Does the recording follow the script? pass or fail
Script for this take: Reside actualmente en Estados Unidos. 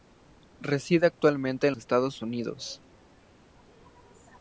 pass